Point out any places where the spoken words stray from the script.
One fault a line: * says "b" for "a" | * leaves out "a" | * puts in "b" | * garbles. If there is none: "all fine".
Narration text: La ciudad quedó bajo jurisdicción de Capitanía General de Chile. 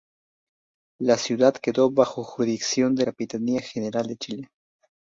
all fine